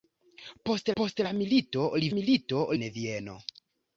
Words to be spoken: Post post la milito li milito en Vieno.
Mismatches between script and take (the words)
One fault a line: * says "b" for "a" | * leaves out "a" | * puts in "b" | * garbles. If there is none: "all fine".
all fine